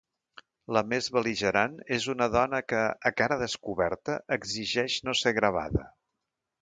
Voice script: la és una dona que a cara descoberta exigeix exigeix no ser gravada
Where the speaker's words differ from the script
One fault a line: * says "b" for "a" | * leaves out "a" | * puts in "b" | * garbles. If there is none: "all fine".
* puts in "més bel·ligerant"
* leaves out "exigeix"